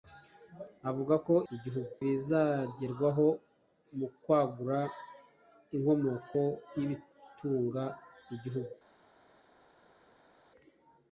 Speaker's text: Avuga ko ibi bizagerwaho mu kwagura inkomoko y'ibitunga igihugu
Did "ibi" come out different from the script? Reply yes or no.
yes